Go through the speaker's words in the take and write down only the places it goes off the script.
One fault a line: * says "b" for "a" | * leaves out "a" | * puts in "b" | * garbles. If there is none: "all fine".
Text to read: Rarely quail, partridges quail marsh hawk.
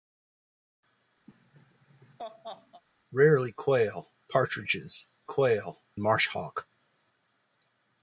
all fine